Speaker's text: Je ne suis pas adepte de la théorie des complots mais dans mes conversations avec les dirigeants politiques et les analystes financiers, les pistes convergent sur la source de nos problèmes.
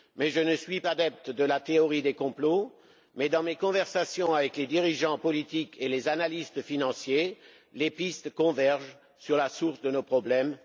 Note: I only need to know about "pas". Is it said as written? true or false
false